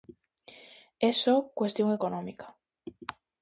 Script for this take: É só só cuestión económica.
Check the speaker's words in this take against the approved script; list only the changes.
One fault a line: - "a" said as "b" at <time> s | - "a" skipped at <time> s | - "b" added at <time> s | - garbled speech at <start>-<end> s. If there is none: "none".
- "só" skipped at 1.4 s